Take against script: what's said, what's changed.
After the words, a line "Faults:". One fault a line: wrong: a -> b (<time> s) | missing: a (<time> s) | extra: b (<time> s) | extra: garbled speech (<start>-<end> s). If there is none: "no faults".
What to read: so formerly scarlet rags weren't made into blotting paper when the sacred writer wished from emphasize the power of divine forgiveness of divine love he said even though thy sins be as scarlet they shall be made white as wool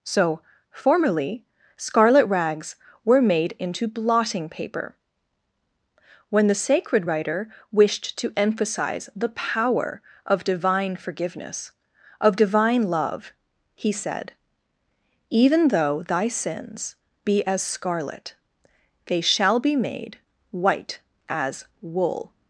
so formerly scarlet rags were made into blotting paper when the sacred writer wished to emphasize the power of divine forgiveness of divine love he said even though thy sins be as scarlet they shall be made white as wool
Faults:
wrong: weren't -> were (3.0 s)
wrong: from -> to (8.2 s)